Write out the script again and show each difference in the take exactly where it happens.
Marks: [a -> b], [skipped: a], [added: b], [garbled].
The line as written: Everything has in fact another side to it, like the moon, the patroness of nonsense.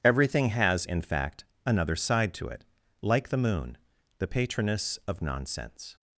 Everything has in fact another side to it, like the moon, the patroness of nonsense.